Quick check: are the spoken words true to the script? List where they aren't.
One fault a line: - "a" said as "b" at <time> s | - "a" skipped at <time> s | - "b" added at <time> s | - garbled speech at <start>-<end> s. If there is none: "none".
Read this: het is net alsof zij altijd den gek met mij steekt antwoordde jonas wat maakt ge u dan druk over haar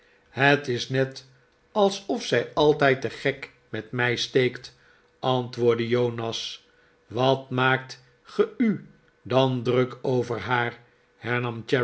none